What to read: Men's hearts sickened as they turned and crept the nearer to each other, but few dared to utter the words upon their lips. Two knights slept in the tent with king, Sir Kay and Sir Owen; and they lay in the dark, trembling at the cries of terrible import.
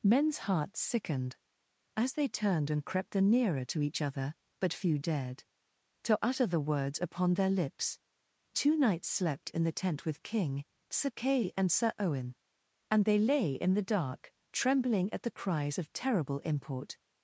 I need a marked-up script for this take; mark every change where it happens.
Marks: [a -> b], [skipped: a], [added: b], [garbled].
Men's hearts sickened as they turned and crept the nearer to each other, but few dared to utter the words upon their lips. Two knights slept in the tent with king, Sir Kay and Sir Owen; and they lay in the dark, trembling at the cries of terrible import.